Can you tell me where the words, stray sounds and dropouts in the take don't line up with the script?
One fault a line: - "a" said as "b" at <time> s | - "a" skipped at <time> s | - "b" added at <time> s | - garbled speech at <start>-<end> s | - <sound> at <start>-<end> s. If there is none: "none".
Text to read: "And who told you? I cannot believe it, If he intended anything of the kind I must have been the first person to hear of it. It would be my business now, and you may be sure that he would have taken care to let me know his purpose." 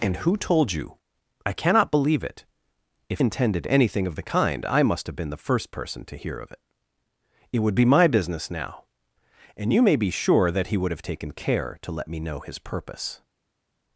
- "he" skipped at 3.2 s